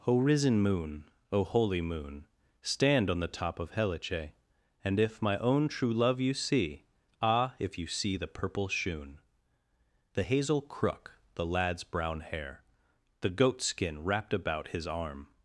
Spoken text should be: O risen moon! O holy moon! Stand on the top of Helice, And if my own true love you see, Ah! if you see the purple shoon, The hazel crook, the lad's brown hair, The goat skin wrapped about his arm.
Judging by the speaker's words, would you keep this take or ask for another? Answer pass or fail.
pass